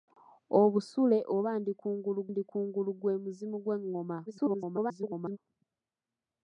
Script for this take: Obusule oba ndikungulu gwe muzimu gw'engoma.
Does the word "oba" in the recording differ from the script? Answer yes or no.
no